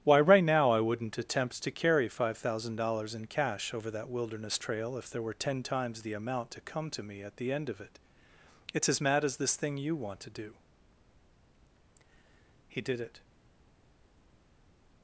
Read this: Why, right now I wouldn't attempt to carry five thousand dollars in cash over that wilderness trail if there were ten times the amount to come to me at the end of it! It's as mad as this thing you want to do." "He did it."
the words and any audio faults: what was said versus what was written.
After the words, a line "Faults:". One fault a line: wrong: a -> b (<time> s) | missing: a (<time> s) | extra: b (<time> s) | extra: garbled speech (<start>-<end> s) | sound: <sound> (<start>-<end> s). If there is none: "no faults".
Why, right now I wouldn't attempt to carry five thousand dollars in cash over that wilderness trail if there were ten times the amount to come to me at the end of it! It's as mad as this thing you want to do." "He did it."
Faults:
no faults